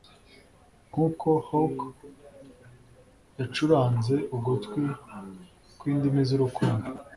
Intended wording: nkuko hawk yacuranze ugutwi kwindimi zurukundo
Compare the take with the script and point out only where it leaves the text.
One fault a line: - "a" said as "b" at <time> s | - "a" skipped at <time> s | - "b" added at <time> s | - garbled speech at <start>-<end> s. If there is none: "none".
none